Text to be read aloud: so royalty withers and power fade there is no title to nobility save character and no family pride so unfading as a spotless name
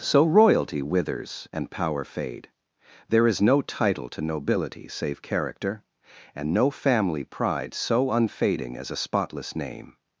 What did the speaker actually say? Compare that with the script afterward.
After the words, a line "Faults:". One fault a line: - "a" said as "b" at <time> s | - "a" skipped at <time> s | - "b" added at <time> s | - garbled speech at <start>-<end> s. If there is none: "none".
so royalty withers and power fade there is no title to nobility save character and no family pride so unfading as a spotless name
Faults:
none